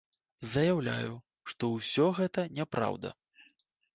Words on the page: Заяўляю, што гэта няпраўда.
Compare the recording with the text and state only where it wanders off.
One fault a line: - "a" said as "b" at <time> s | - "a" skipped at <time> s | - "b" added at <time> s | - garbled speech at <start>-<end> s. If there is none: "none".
- "ўсё" added at 1.7 s